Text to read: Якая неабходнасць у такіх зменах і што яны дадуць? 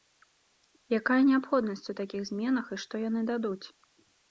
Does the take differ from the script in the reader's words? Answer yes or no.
no